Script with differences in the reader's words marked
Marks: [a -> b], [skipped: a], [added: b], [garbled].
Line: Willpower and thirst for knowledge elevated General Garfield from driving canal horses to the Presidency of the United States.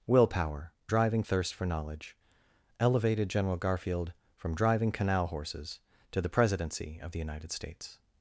Willpower [and -> driving] thirst for knowledge elevated General Garfield from driving canal horses to the Presidency of the United States.